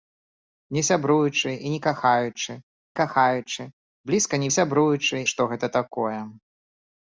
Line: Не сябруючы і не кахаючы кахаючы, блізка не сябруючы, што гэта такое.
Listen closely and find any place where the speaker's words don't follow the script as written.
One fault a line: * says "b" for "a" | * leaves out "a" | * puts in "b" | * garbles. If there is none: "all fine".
all fine